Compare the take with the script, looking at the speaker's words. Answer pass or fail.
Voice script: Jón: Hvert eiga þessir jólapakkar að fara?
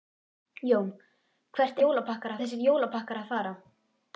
fail